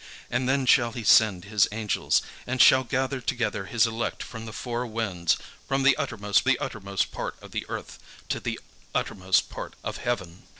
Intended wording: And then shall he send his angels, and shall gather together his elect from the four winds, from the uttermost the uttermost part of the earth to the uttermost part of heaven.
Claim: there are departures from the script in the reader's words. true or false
false